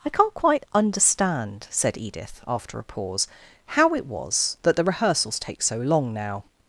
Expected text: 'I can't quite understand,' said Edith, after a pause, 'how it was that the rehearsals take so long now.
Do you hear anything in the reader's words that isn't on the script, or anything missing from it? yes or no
no